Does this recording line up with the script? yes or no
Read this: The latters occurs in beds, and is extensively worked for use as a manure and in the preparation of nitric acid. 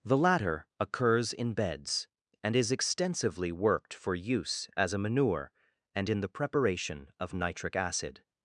no